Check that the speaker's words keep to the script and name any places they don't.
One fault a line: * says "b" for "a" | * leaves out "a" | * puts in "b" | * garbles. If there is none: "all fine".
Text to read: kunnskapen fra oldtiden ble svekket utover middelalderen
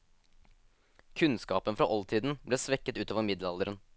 all fine